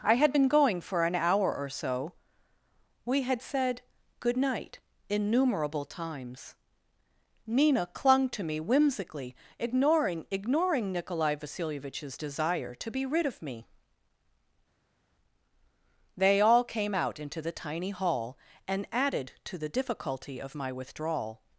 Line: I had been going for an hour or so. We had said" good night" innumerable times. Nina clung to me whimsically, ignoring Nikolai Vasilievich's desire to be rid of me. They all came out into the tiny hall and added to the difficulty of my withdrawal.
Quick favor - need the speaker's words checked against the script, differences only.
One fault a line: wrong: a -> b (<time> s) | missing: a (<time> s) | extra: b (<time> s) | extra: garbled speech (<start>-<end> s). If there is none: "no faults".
extra: ignoring (10.3 s)